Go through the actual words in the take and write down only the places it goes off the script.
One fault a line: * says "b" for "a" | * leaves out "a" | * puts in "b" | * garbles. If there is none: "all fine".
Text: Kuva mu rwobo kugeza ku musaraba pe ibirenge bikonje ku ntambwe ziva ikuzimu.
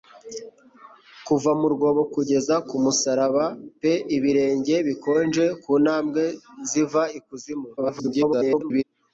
* garbles